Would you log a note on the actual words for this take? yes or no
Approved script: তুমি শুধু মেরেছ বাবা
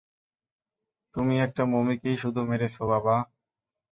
yes